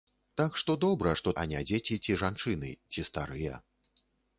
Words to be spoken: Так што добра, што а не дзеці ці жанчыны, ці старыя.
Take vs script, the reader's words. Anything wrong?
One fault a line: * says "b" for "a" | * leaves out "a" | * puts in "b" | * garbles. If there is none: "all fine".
all fine